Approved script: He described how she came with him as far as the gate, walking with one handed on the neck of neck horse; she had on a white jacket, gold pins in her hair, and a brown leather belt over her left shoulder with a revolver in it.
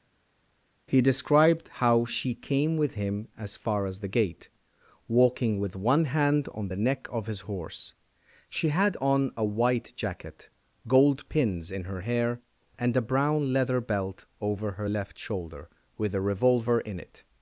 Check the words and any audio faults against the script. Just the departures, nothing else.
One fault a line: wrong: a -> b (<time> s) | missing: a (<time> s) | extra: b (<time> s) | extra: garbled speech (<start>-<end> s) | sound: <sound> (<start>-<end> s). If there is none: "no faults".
wrong: handed -> hand (6.0 s)
wrong: neck -> his (7.3 s)